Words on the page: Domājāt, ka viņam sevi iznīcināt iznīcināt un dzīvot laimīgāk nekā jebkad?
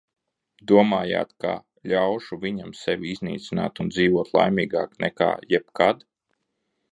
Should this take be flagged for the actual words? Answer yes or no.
yes